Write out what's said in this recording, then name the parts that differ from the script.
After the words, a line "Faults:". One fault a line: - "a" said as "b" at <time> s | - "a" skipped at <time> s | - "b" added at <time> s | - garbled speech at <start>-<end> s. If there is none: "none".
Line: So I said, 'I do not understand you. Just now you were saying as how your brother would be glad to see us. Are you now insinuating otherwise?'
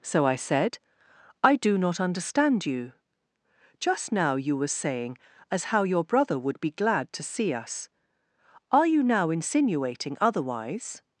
So I said, 'I do not understand you. Just now you were saying as how your brother would be glad to see us. Are you now insinuating otherwise?'
Faults:
none